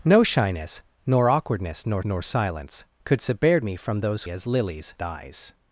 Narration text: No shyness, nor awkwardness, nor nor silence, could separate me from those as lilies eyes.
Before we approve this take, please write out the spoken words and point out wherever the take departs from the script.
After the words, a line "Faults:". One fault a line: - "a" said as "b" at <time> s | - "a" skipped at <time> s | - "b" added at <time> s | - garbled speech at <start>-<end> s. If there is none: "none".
No shyness, nor awkwardness, nor nor silence, could separate me from those as lilies eyes.
Faults:
none